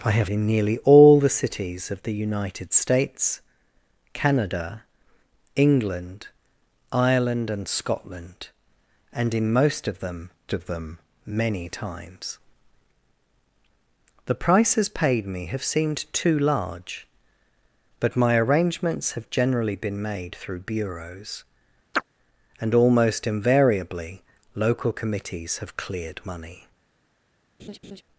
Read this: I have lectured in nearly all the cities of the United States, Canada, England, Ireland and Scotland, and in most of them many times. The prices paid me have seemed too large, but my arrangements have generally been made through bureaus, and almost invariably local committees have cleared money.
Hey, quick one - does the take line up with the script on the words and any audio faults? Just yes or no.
no